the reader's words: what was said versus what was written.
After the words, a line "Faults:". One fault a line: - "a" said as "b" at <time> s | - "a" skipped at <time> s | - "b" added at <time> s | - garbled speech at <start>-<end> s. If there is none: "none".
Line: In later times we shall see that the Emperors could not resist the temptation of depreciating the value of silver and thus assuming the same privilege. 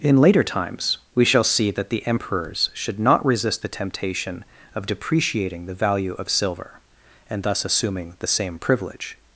In later times we shall see that the Emperors should not resist the temptation of depreciating the value of silver and thus assuming the same privilege.
Faults:
- "could" said as "should" at 2.7 s